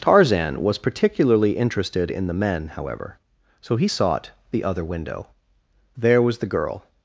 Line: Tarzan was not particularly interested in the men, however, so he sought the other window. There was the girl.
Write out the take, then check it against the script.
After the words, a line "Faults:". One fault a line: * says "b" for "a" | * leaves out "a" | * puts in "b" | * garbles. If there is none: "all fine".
Tarzan was particularly interested in the men, however, so he sought the other window. There was the girl.
Faults:
* leaves out "not"